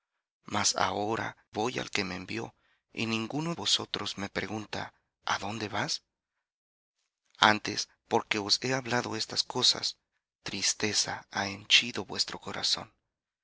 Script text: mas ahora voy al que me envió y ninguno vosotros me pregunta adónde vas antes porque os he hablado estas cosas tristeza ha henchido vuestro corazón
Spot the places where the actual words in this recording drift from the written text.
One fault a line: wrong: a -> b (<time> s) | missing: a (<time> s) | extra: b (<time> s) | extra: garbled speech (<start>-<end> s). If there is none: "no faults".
no faults